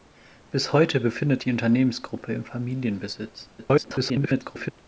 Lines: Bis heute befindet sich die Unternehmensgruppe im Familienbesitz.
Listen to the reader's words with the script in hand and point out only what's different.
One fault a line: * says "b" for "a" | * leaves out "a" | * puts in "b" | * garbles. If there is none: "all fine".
* leaves out "sich"
* garbles